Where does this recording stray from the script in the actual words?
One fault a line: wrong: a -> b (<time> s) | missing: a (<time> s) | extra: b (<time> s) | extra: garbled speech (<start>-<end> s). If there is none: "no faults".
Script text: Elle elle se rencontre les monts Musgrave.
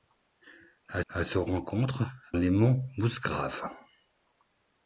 no faults